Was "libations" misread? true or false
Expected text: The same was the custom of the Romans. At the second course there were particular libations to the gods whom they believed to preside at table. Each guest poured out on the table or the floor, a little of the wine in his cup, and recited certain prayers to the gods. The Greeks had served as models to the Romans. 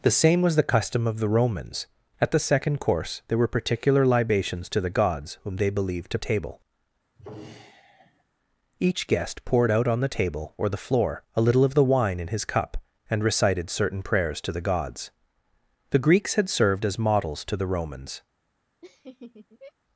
false